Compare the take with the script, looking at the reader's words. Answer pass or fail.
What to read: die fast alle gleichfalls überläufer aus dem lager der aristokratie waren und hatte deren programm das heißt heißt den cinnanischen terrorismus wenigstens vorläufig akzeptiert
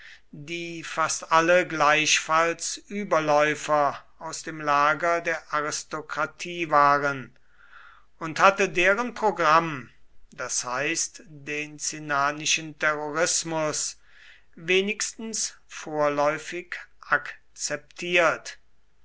fail